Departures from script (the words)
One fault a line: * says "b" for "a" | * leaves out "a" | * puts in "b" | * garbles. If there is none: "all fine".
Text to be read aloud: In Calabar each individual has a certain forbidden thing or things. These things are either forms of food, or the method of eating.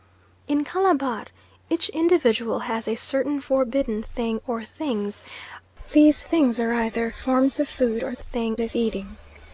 * says "thing" for "method"